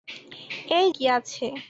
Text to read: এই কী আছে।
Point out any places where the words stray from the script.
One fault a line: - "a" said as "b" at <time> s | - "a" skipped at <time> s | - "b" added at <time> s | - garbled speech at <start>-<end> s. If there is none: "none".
none